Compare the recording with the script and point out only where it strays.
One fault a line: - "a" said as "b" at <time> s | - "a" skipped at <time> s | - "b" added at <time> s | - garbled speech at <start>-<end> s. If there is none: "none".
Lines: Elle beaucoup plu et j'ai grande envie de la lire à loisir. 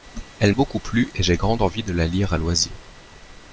none